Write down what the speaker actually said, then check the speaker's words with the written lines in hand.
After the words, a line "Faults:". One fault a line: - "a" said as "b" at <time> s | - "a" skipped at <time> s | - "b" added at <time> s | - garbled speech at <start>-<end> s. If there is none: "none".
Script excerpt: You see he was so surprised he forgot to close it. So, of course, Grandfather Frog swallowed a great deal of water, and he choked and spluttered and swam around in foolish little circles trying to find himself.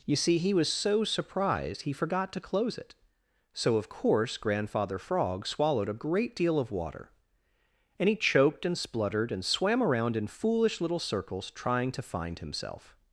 You see he was so surprised he forgot to close it. So, of course, Grandfather Frog swallowed a great deal of water, and he choked and spluttered and swam around in foolish little circles trying to find himself.
Faults:
none